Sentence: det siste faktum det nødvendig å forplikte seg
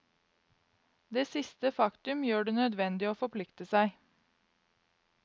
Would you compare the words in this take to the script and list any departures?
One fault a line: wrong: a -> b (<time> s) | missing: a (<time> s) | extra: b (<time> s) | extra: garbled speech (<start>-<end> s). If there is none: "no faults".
extra: gjør (2.2 s)